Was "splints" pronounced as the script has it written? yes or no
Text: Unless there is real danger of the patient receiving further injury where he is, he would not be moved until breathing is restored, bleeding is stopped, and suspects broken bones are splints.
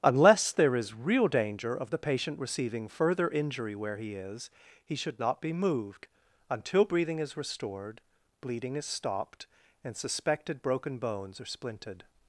no